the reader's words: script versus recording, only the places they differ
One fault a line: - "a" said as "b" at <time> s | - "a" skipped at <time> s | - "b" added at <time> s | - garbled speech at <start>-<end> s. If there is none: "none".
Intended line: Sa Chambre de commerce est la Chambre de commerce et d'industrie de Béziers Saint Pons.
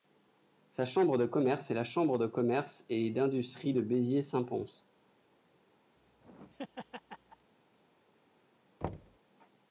none